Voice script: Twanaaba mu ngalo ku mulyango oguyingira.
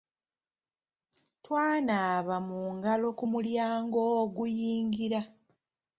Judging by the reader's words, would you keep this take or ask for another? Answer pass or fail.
pass